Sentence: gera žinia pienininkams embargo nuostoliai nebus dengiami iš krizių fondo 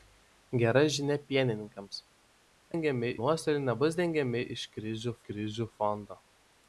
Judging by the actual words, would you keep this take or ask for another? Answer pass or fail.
fail